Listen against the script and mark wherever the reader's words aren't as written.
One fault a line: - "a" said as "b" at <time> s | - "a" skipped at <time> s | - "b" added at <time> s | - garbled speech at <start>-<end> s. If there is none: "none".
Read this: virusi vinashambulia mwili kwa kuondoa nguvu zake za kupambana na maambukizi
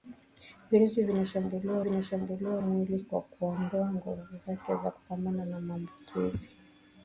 - "vinashambulia" added at 1.8 s